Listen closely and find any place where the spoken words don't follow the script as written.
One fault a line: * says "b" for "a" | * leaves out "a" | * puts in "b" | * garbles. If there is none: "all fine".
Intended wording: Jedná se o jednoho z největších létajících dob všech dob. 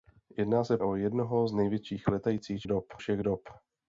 all fine